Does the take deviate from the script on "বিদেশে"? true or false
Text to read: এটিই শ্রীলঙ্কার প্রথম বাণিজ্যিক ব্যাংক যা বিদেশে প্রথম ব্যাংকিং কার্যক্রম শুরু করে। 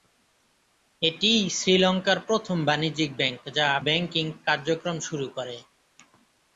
true